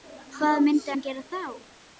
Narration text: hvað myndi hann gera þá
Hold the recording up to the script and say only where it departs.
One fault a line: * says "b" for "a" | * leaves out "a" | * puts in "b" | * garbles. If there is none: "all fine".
all fine